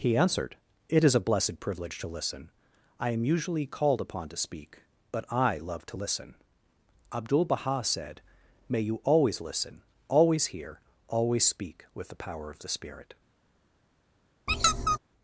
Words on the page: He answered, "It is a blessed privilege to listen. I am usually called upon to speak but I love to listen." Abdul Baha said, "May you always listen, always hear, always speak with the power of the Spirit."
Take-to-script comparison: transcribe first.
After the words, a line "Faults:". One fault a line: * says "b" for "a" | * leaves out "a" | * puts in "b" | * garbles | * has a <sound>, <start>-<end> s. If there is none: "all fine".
He answered, "It is a blessed privilege to listen. I am usually called upon to speak but I love to listen." Abdul Baha said, "May you always listen, always hear, always speak with the power of the Spirit."
Faults:
* has a squeak, 14.5-15.0 s